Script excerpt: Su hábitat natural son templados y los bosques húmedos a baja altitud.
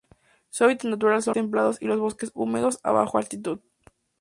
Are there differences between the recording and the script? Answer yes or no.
no